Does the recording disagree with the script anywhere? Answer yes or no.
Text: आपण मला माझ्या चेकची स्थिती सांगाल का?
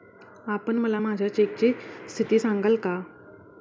no